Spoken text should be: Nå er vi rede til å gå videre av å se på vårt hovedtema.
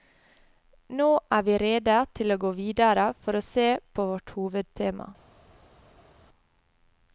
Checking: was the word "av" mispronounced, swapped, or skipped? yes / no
yes